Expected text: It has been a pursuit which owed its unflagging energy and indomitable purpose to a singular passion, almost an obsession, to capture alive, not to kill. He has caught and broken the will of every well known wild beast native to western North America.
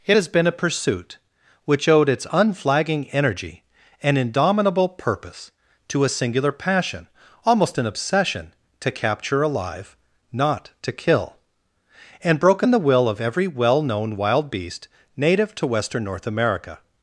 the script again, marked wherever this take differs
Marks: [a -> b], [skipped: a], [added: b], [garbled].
It has been a pursuit which owed its unflagging energy and indomitable purpose to a singular passion, almost an obsession, to capture alive, not to kill. [skipped: He has caught] and broken the will of every well known wild beast native to western North America.